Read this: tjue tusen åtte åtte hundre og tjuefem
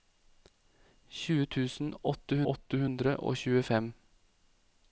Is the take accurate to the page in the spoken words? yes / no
yes